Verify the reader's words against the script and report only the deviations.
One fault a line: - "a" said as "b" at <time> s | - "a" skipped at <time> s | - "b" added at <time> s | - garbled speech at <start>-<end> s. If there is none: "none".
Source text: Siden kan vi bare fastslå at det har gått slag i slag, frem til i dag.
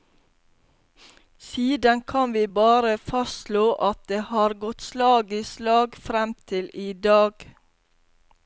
none